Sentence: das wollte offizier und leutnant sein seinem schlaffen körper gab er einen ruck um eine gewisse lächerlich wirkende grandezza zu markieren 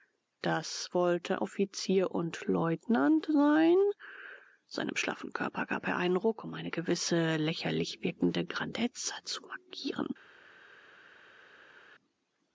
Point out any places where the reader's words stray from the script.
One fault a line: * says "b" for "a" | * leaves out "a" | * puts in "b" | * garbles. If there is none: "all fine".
all fine